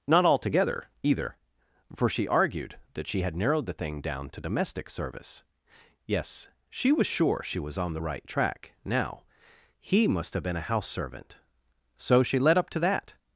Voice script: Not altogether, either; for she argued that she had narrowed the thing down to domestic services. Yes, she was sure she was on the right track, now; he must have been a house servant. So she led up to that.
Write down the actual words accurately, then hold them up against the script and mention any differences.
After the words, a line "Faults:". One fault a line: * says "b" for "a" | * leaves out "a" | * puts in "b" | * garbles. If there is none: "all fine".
Not altogether, either; for she argued that she had narrowed the thing down to domestic service. Yes, she was sure she was on the right track, now; he must have been a house servant. So she led up to that.
Faults:
* says "service" for "services"